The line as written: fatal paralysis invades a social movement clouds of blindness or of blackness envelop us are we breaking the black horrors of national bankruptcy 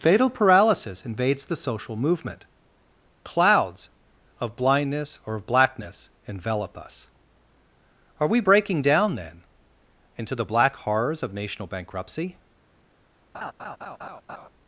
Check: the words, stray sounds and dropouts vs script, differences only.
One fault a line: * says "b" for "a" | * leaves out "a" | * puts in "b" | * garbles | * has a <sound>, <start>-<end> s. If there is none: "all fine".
* says "the" for "a"
* puts in "down then into"
* has a laugh, 13.3-14.5 s